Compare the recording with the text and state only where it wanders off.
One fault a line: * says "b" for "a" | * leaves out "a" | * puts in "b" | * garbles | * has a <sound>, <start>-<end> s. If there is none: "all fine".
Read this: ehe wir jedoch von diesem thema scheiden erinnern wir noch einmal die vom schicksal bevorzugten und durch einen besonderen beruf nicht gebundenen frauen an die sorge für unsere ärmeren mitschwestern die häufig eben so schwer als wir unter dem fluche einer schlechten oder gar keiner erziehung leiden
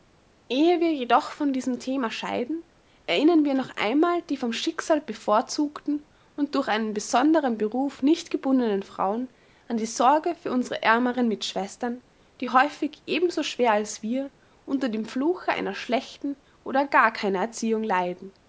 all fine